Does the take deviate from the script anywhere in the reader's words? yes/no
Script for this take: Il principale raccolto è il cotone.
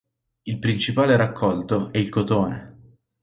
no